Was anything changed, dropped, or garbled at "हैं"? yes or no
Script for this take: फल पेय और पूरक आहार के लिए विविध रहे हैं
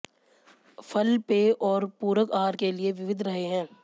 no